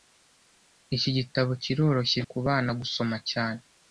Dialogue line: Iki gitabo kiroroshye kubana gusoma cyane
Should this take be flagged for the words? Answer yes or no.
no